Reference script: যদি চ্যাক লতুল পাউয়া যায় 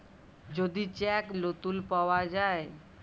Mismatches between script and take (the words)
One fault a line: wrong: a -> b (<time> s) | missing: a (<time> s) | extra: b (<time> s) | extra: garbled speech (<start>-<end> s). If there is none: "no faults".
no faults